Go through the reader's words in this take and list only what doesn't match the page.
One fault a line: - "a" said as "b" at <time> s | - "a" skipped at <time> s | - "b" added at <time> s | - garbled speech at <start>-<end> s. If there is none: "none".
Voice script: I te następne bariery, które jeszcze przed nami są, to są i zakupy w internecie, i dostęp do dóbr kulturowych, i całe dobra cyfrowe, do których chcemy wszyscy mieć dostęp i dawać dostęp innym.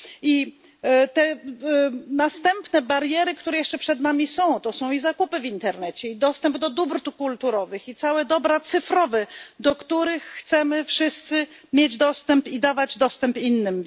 none